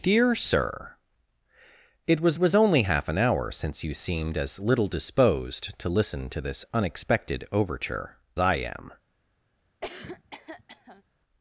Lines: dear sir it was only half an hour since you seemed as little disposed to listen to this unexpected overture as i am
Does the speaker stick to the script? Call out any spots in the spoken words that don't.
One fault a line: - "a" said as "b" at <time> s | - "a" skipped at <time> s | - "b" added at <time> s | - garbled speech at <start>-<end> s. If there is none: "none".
- "was" added at 2.4 s
- "as" skipped at 8.2 s